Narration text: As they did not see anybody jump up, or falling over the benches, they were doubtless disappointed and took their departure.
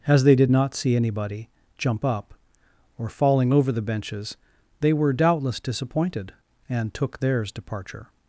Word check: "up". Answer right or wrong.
right